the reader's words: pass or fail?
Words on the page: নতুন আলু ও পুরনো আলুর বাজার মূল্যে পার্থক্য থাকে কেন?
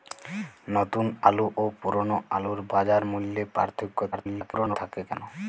fail